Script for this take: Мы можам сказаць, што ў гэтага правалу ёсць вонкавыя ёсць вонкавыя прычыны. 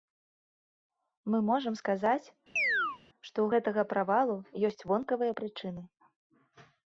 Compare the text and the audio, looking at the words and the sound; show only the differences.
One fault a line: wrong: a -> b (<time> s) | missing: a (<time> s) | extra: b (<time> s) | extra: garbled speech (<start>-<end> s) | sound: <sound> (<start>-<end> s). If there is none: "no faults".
sound: chirp (2.6-3.0 s)
missing: ёсць вонкавыя (5.3 s)